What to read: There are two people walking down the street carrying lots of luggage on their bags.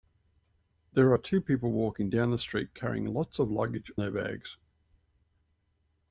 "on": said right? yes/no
no